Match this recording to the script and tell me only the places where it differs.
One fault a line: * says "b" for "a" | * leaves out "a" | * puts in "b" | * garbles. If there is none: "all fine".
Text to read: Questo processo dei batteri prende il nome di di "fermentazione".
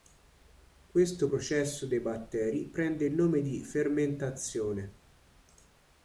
* leaves out "di"